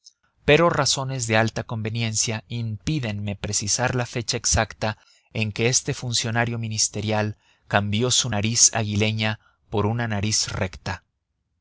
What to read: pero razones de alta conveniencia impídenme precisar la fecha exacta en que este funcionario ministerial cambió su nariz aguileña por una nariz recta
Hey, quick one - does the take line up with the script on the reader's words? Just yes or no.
yes